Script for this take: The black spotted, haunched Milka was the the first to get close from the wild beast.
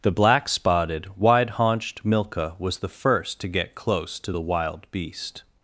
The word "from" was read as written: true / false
false